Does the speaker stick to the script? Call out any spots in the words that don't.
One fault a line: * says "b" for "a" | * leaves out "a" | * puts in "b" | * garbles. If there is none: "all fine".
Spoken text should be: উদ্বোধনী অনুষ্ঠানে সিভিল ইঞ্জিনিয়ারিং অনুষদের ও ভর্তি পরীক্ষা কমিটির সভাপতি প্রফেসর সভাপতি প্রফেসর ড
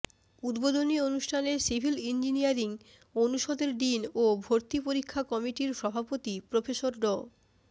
* puts in "ডিন"
* leaves out "সভাপতি প্রফেসর"